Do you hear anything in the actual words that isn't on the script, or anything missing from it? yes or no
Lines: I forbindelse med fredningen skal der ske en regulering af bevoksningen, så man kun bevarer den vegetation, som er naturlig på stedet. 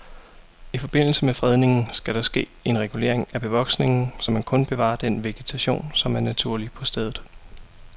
no